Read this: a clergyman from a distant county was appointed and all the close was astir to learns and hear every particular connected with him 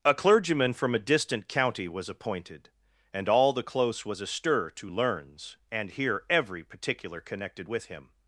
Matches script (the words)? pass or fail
pass